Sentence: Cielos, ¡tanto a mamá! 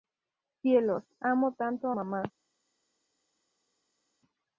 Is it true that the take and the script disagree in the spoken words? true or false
true